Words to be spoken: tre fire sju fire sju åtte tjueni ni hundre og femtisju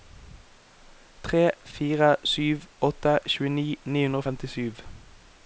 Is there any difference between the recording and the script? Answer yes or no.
yes